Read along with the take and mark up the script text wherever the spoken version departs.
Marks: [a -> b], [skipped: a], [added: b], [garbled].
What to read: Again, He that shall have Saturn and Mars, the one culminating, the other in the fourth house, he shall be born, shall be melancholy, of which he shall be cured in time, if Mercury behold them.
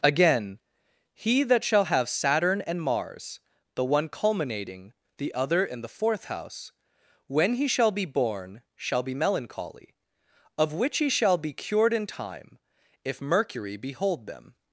Again, He that shall have Saturn and Mars, the one culminating, the other in the fourth house, [added: when] he shall be born, shall be melancholy, of which he shall be cured in time, if Mercury behold them.